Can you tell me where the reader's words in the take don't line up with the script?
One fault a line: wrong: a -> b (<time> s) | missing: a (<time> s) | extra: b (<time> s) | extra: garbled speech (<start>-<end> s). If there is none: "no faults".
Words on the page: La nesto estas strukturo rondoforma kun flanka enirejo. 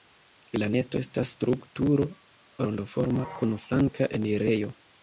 no faults